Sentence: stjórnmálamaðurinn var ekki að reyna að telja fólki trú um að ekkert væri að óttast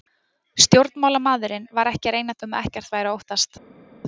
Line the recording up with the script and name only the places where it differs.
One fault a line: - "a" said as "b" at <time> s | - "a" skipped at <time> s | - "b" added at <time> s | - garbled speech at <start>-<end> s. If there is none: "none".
- "telja fólki trú" skipped at 2.4 s